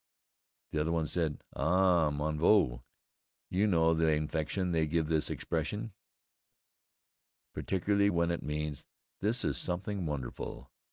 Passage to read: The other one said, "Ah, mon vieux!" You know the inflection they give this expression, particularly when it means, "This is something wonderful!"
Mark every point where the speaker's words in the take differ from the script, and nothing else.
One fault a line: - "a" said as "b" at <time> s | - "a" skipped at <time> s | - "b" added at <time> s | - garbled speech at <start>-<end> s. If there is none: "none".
none